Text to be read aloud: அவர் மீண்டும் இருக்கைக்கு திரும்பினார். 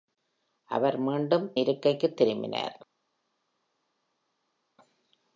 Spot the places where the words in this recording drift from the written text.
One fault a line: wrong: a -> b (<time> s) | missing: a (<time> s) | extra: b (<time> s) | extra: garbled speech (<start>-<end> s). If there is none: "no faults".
no faults